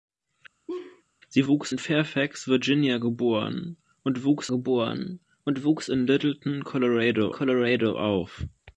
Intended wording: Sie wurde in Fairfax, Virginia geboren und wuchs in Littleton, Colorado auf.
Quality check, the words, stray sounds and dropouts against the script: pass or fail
fail